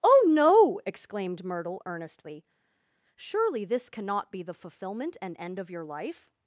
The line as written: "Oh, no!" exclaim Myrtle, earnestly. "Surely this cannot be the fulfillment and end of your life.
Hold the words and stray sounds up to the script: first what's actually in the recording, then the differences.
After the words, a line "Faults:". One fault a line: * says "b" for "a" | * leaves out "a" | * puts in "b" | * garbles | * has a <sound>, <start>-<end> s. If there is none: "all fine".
"Oh, no!" exclaimed Myrtle, earnestly. "Surely this cannot be the fulfillment and end of your life.
Faults:
* says "exclaimed" for "exclaim"